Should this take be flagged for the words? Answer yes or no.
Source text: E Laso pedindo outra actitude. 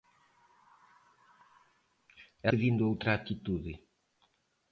yes